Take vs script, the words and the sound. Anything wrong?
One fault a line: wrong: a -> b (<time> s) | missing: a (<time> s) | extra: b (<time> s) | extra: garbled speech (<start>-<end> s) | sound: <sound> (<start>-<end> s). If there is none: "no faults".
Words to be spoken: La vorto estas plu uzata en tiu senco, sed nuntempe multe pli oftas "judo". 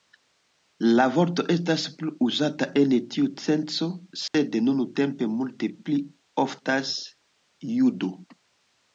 sound: dropout (4.3-4.3 s)